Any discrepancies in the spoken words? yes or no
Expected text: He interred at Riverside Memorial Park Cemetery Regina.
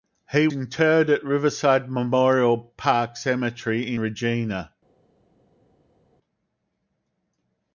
no